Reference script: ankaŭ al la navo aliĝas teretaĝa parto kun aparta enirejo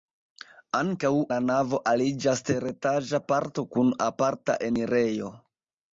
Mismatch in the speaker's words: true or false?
true